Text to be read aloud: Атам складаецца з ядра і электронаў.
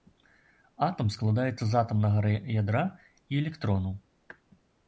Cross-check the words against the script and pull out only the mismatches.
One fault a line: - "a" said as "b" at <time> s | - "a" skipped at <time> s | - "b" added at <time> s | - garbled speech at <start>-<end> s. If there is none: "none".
- "атамнага" added at 1.8 s